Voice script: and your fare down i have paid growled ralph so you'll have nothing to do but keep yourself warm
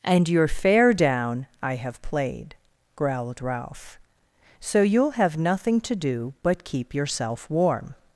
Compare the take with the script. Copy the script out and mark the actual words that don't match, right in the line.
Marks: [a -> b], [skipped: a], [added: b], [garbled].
and your fare down i have [paid -> played] growled ralph so you'll have nothing to do but keep yourself warm